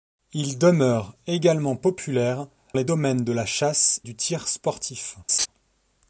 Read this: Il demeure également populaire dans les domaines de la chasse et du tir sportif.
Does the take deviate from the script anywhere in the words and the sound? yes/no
yes